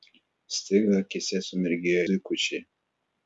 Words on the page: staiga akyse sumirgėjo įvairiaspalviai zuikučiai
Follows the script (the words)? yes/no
no